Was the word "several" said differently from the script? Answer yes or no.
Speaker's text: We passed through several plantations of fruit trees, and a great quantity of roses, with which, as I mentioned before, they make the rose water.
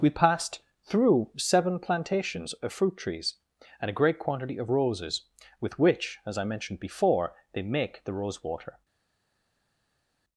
yes